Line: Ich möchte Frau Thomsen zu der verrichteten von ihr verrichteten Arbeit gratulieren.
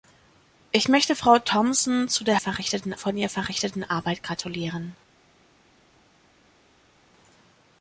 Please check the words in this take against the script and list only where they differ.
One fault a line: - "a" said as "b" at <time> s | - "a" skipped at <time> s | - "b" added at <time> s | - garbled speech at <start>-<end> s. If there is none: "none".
none